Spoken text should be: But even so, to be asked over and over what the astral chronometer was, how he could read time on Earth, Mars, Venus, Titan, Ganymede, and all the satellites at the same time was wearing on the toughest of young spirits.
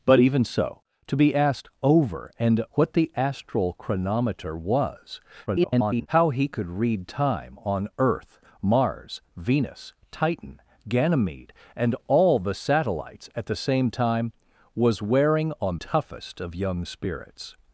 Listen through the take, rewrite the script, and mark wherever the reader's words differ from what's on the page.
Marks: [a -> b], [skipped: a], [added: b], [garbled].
But even so, to be asked over and [skipped: over] what the astral chronometer was, [garbled] how he could read time on Earth, Mars, Venus, Titan, Ganymede, and all the satellites at the same time was wearing on [skipped: the] toughest of young spirits.